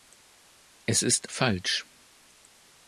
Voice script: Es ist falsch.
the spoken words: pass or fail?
pass